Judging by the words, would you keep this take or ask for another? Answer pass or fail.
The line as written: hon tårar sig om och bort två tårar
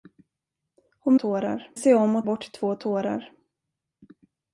pass